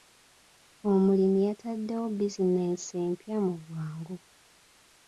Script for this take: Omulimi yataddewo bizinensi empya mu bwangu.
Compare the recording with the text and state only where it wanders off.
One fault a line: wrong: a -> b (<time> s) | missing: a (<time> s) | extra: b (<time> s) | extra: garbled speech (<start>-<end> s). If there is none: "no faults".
no faults